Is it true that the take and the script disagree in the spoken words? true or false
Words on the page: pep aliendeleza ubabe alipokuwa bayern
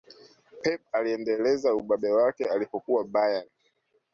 true